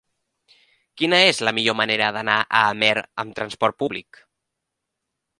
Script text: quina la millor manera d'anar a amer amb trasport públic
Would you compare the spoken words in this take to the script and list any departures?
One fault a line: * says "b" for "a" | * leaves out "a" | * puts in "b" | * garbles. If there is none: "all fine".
* puts in "és"